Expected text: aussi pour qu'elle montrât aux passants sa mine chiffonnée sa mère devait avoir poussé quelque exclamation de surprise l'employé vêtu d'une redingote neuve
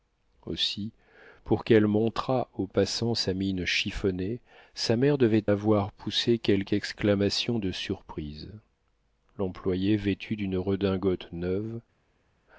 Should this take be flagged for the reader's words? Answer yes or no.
no